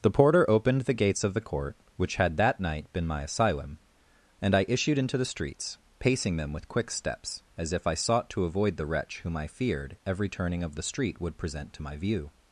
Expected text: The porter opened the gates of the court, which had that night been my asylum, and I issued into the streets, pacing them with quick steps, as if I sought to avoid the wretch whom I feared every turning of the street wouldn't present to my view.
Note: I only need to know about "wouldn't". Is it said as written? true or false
false